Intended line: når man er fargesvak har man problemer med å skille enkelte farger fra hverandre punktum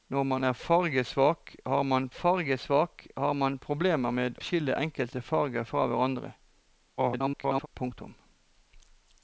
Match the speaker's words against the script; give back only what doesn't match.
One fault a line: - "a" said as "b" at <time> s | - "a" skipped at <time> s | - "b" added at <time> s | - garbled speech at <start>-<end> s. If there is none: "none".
- "fargesvak har man" added at 2.1 s
- "å" skipped at 4.4 s
- garbled speech at 7.0-7.7 s